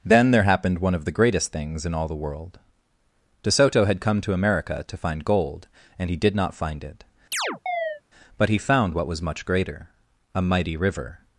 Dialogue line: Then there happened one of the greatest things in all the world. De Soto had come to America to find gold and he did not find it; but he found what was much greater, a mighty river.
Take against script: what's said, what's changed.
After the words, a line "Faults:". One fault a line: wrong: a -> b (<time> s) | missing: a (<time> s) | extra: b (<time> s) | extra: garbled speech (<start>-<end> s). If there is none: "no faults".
Then there happened one of the greatest things in all the world. De Soto had come to America to find gold and he did not find it; but he found what was much greater, a mighty river.
Faults:
no faults